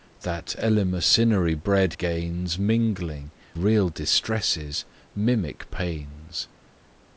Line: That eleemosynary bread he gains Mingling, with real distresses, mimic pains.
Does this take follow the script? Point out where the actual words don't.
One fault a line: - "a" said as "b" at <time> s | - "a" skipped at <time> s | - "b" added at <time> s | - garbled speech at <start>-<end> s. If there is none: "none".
- "he" skipped at 1.9 s
- "with" skipped at 3.3 s